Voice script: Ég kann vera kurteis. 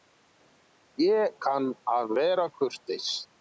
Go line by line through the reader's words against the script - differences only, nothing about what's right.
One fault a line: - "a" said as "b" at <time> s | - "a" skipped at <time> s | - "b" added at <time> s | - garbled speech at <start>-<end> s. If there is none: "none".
- "að" added at 2.0 s